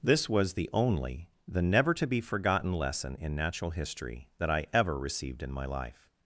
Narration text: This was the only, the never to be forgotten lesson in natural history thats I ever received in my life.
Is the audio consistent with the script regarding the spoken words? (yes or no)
no